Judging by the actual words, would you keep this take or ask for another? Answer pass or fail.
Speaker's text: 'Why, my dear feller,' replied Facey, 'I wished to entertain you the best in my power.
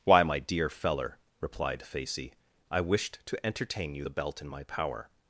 fail